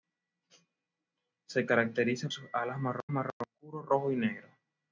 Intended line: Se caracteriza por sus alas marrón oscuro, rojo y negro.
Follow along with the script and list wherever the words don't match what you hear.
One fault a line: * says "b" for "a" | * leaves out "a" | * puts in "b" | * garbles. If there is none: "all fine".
* leaves out "por"
* puts in "marrón"